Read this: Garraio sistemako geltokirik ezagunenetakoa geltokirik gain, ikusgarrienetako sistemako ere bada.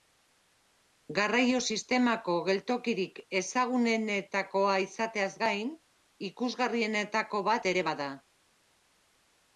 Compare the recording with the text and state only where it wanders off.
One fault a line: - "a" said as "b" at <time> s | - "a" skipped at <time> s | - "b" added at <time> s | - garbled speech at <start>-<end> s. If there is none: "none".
- "geltokirik" said as "izateaz" at 4.9 s
- "sistemako" said as "bat" at 7.5 s